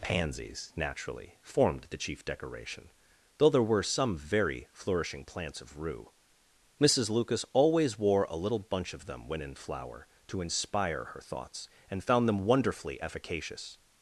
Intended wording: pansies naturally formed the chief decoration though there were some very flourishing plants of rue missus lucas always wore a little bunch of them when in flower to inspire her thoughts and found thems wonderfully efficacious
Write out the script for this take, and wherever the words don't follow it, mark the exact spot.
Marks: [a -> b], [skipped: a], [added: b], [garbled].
pansies naturally formed the chief decoration though there were some very flourishing plants of rue missus lucas always wore a little bunch of them when in flower to inspire her thoughts and found [thems -> them] wonderfully efficacious